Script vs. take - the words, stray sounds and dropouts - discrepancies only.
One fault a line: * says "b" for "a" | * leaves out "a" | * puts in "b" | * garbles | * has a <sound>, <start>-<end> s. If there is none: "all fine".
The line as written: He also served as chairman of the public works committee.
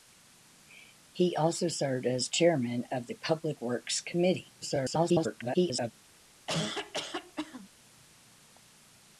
* garbles
* has a cough, 6.5-7.7 s